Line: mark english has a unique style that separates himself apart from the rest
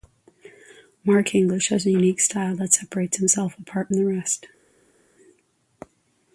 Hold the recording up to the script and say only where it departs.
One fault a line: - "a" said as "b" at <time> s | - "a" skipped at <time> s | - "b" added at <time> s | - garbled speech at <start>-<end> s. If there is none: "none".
- "from" skipped at 3.9 s